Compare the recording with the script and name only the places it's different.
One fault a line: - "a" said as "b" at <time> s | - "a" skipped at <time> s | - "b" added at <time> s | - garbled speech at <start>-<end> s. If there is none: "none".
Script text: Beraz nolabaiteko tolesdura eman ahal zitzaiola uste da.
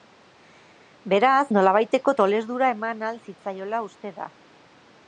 none